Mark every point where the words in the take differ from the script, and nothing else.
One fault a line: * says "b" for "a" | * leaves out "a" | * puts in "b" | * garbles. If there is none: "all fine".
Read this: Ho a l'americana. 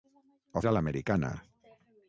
all fine